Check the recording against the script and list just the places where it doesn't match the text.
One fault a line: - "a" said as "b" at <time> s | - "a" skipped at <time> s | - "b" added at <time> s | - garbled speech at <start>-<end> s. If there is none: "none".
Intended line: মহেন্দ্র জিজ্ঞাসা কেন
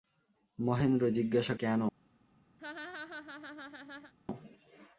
none